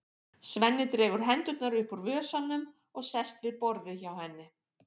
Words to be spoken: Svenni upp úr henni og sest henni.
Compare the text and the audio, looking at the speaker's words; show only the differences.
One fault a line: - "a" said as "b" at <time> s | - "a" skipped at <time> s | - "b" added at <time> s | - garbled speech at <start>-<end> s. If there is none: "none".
- "dregur hendurnar" added at 0.9 s
- "henni" said as "vösunum" at 2.1 s
- "við borðið hjá" added at 3.5 s